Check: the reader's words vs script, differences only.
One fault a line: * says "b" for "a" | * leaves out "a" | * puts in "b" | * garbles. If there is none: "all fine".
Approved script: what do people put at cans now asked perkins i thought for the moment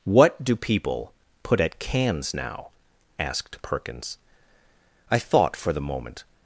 all fine